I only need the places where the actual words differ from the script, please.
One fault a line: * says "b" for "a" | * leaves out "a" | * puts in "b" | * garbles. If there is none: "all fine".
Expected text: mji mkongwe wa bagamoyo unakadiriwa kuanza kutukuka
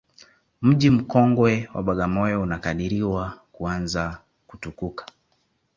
all fine